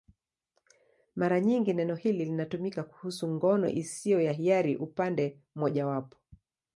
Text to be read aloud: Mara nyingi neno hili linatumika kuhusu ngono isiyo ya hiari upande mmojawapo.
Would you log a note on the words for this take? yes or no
no